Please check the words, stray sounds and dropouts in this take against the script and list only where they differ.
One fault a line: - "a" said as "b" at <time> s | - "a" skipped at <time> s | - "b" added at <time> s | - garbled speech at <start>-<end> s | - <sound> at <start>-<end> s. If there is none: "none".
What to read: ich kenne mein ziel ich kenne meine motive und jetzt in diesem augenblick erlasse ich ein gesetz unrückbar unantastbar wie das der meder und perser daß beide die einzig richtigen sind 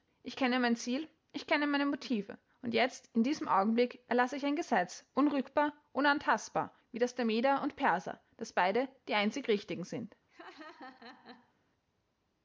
- laugh at 10.3-11.5 s